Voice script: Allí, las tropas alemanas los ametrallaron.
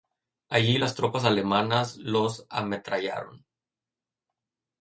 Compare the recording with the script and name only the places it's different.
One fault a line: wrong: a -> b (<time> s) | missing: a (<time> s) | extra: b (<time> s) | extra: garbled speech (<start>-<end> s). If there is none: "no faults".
no faults